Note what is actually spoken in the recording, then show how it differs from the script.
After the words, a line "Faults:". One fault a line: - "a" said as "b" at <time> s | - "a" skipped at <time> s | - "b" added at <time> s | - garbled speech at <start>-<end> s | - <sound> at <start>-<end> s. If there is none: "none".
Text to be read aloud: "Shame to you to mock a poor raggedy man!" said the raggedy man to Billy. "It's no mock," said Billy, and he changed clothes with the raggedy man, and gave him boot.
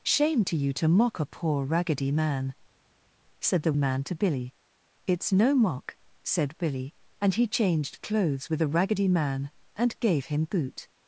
"Shame to you to mock a poor raggedy man!" said the man to Billy. "It's no mock," said Billy, and he changed clothes with the raggedy man, and gave him boot.
Faults:
- "raggedy" skipped at 3.7 s